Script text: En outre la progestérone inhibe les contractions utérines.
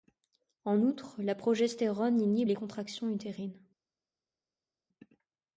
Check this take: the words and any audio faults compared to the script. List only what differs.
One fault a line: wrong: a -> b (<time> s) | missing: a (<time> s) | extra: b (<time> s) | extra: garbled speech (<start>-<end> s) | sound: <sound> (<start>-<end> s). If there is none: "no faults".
no faults